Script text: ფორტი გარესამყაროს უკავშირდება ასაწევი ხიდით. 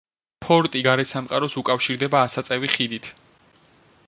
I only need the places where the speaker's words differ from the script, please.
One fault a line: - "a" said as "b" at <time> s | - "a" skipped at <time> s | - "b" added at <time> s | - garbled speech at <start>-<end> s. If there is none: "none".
none